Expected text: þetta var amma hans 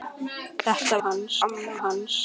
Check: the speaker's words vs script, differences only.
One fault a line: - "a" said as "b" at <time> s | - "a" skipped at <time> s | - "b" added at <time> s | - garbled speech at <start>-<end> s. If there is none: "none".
- "var" said as "hans" at 1.0 s